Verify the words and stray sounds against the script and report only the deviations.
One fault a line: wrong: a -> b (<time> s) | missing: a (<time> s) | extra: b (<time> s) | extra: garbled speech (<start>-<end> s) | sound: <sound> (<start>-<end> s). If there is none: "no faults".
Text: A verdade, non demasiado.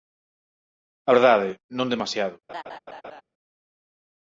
sound: laugh (2.5-3.2 s)